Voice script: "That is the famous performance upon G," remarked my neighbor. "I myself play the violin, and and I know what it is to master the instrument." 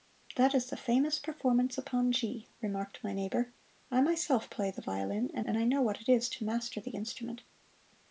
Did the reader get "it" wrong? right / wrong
right